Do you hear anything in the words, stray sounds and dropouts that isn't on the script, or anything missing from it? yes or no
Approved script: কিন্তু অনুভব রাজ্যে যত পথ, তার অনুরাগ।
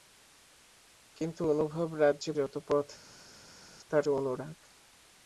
no